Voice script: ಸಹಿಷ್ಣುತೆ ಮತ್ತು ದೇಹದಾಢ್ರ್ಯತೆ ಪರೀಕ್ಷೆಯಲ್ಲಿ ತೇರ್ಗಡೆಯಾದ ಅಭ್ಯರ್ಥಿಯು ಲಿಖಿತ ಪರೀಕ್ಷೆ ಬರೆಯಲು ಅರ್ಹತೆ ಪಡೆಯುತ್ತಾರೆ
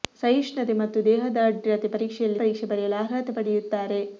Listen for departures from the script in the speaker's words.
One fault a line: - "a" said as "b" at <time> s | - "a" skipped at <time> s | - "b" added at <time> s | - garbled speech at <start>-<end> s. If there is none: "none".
- "ತೇರ್ಗಡೆಯಾದ ಅಭ್ಯರ್ಥಿಯು ಲಿಖಿತ" skipped at 2.4 s